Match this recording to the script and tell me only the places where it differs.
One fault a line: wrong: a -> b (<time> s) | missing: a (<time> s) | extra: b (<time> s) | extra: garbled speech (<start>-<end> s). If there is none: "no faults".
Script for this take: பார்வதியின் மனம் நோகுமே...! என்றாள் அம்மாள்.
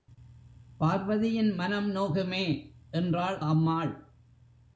no faults